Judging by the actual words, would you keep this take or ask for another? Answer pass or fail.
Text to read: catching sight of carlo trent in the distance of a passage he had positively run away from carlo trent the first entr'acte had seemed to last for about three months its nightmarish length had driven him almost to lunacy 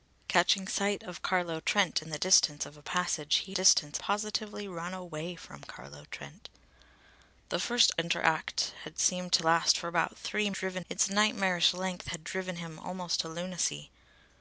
fail